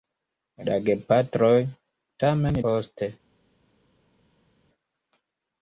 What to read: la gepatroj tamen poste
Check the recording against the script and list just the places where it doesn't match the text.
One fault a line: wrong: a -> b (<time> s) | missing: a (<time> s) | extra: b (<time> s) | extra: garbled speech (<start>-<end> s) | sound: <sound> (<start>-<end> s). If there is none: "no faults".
no faults